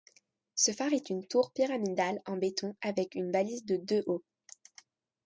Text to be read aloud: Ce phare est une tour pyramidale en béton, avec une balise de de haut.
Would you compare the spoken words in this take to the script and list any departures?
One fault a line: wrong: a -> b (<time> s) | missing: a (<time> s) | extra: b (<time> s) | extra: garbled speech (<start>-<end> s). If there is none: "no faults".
no faults